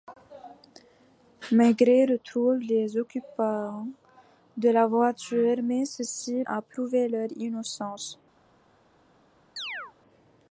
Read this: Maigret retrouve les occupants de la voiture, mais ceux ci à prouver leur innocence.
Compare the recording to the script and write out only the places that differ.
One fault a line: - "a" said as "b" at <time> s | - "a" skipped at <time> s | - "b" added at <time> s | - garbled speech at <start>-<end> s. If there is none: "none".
none